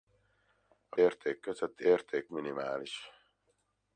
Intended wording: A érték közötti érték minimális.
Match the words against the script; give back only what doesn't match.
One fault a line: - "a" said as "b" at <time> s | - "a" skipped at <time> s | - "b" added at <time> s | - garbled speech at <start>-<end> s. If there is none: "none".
none